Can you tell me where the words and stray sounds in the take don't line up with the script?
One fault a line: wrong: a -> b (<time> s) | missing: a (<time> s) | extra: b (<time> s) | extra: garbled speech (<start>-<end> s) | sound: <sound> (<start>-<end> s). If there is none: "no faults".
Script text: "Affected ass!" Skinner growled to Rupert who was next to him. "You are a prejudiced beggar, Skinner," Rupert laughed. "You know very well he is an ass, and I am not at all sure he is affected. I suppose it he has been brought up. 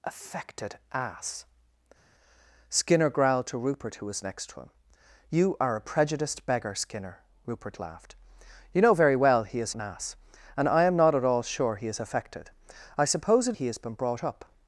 no faults